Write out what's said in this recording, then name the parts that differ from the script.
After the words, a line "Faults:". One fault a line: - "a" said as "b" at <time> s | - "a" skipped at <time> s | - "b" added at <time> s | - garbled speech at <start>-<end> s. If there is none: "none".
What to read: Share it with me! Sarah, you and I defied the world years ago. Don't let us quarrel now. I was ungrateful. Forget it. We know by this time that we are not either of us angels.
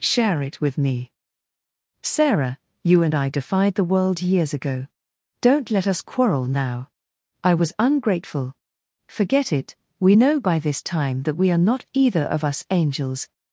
Share it with me! Sarah, you and I defied the world years ago. Don't let us quarrel now. I was ungrateful. Forget it. We know by this time that we are not either of us angels.
Faults:
none